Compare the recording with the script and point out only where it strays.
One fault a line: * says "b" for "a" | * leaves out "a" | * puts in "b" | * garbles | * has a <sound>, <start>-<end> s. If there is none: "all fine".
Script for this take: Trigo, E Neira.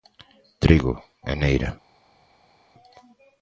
all fine